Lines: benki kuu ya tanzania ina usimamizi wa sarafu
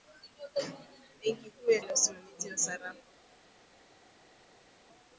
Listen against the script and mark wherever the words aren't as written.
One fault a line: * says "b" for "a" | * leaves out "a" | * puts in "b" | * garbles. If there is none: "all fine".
* leaves out "tanzania"